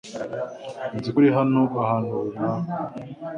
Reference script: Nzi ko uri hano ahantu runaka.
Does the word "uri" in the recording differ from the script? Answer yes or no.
no